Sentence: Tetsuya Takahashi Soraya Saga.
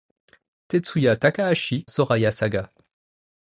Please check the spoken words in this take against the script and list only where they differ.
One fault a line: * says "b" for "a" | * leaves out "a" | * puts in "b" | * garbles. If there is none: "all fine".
all fine